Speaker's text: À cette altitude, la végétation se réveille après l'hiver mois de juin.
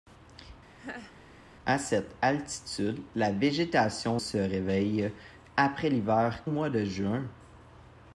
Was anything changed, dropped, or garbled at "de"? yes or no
no